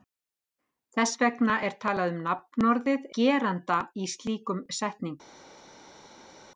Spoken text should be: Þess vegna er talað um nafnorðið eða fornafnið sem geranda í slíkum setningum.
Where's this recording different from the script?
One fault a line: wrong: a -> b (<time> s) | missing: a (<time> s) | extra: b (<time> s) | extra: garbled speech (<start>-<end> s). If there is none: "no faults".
missing: eða fornafnið sem (3.0 s)